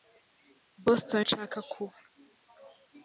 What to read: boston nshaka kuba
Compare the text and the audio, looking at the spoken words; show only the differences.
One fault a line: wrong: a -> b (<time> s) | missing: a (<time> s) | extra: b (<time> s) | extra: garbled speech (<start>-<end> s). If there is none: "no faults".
no faults